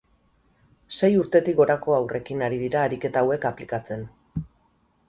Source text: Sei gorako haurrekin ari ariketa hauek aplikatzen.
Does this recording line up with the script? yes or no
no